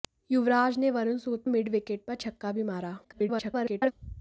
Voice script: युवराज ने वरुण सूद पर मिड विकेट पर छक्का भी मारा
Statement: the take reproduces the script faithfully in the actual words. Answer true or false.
false